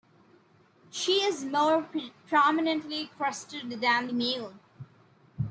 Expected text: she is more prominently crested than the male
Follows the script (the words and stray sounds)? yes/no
yes